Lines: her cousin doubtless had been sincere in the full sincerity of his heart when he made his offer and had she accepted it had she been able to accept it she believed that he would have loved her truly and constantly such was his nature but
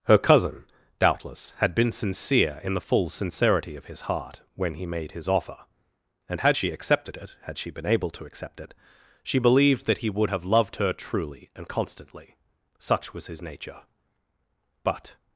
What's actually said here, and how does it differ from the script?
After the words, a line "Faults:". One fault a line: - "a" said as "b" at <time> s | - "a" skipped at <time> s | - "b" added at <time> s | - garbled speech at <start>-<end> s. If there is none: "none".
her cousin doubtless had been sincere in the full sincerity of his heart when he made his offer and had she accepted it had she been able to accept it she believed that he would have loved her truly and constantly such was his nature but
Faults:
none